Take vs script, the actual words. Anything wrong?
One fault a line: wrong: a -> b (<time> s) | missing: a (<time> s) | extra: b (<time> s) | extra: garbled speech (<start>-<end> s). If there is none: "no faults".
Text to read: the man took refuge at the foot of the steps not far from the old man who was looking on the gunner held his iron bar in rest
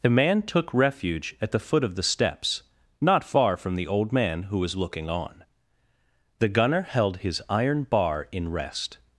no faults